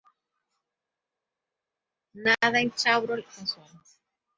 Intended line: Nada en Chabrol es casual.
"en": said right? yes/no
yes